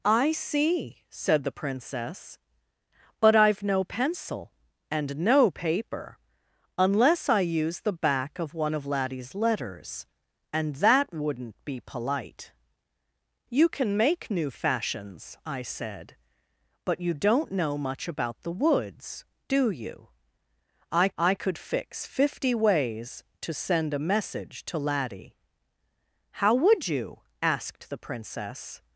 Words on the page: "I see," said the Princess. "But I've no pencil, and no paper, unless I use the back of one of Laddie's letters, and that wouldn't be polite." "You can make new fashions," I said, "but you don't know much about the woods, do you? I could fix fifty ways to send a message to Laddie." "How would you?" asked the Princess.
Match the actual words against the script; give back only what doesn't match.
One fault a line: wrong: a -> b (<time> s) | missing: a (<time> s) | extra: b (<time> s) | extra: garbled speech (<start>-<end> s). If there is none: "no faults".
extra: I (21.2 s)